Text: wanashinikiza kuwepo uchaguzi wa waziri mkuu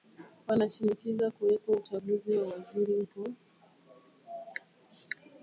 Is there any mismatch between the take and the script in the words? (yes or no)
no